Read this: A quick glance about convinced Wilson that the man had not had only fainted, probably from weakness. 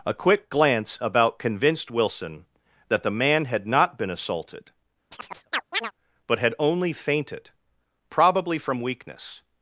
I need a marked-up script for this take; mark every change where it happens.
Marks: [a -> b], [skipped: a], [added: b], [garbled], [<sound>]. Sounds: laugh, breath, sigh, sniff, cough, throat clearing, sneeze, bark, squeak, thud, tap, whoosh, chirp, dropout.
A quick glance about convinced Wilson that the man had not [added: been assaulted but] [chirp] had only fainted, probably from weakness.